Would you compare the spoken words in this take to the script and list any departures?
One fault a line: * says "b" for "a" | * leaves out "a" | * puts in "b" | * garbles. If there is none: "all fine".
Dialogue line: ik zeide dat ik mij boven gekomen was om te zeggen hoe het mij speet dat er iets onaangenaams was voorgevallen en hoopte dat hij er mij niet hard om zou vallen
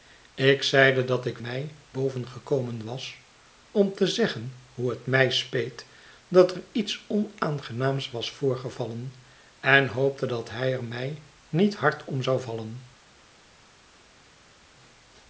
all fine